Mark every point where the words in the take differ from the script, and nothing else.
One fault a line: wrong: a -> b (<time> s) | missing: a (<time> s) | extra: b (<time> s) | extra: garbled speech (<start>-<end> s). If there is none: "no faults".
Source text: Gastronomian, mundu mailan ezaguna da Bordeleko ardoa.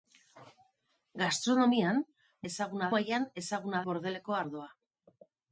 wrong: mundu -> ezaguna (2.5 s)
missing: da (3.8 s)